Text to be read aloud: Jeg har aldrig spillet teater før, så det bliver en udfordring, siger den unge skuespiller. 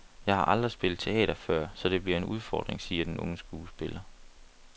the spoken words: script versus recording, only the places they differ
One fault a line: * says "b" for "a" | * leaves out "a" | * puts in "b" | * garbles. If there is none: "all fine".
all fine